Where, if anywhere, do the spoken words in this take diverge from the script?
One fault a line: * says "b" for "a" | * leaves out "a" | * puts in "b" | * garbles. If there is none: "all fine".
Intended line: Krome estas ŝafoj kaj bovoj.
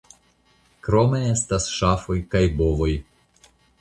all fine